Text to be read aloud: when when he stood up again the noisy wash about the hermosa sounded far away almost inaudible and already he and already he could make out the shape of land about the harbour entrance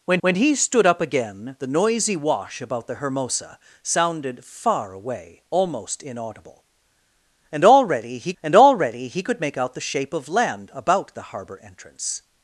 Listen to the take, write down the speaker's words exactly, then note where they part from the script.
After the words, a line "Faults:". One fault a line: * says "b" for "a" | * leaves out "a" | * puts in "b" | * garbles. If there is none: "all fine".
when when he stood up again the noisy wash about the hermosa sounded far away almost inaudible and already he and already he could make out the shape of land about the harbour entrance
Faults:
all fine